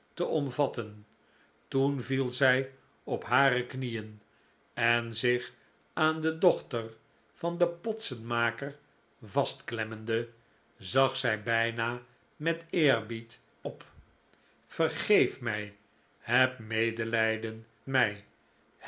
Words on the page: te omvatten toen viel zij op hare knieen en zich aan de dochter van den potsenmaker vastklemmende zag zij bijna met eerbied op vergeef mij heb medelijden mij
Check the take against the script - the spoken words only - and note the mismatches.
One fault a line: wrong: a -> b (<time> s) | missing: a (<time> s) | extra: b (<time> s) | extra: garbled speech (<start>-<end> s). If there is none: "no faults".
no faults